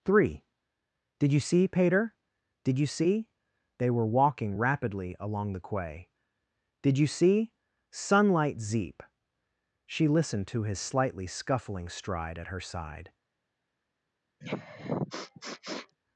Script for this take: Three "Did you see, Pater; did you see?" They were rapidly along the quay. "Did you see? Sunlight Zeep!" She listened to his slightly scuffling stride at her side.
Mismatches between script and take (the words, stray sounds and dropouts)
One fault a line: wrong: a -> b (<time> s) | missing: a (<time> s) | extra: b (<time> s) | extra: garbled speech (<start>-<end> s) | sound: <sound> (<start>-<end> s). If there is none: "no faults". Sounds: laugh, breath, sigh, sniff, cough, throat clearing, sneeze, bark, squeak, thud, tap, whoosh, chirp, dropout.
extra: walking (4.1 s)
sound: sniff (14.4-16.0 s)